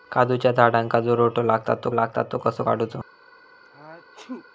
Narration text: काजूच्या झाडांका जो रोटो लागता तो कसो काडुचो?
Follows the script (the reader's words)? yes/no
no